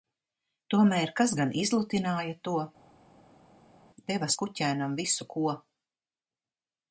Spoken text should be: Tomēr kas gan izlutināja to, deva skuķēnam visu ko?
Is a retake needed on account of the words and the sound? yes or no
no